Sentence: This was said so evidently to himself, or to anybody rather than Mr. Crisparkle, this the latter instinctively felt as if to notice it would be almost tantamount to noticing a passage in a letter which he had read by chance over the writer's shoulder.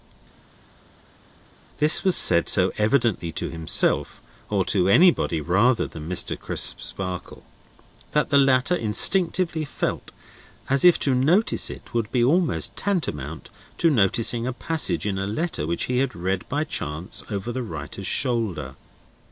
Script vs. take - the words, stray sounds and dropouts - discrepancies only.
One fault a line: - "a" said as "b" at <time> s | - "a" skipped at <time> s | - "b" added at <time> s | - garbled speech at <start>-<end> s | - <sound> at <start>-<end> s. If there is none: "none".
- "this" said as "that" at 8.1 s